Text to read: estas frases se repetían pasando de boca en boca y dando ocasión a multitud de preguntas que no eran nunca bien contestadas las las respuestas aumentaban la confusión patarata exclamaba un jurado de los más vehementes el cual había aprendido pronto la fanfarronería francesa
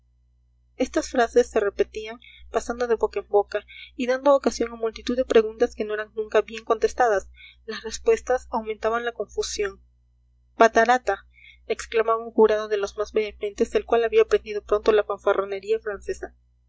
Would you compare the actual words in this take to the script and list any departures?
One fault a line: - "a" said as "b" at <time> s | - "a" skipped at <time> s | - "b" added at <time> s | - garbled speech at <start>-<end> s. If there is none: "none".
- "las" skipped at 7.8 s